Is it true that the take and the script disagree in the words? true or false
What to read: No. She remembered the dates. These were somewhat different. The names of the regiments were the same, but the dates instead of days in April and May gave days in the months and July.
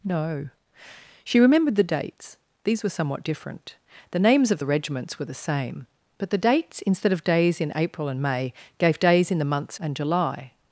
false